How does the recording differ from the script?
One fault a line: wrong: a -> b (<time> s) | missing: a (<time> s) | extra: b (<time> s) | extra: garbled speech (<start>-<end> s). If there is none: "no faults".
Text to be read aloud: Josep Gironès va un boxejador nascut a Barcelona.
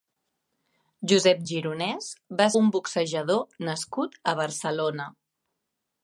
no faults